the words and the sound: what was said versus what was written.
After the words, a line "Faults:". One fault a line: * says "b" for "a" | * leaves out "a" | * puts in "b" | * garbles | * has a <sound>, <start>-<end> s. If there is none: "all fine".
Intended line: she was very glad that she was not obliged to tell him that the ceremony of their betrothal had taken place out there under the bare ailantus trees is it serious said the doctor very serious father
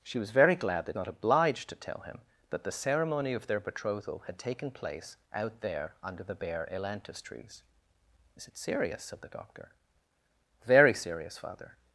she was very glad that not obliged to tell him that the ceremony of their betrothal had taken place out there under the bare ailantus trees is it serious said the doctor very serious father
Faults:
* leaves out "she was"